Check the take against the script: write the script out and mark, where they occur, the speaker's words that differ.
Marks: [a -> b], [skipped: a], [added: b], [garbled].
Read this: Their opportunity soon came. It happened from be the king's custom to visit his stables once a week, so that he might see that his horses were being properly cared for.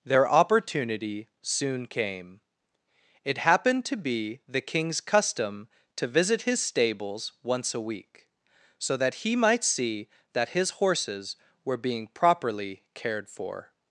Their opportunity soon came. It happened [from -> to] be the king's custom to visit his stables once a week, so that he might see that his horses were being properly cared for.